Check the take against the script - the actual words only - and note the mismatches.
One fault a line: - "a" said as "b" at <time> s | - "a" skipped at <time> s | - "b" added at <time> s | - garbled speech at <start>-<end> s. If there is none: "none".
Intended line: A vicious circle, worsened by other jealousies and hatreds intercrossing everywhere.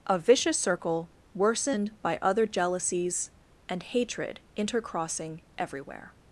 - "hatreds" said as "hatred" at 3.8 s